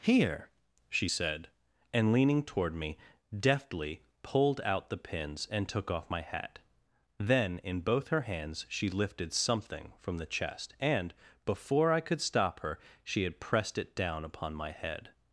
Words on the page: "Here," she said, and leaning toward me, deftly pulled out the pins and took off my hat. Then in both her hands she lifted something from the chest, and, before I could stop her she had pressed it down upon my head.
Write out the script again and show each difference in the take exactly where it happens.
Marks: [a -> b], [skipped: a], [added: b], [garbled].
"Here," she said, and leaning toward me, deftly pulled out the pins and took off my hat. Then in both her hands she lifted something from the chest, and, before I could stop her she had pressed it down upon my head.